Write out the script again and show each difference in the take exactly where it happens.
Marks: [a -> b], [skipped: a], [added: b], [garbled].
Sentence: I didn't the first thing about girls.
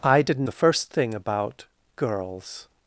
I didn't the first thing about girls.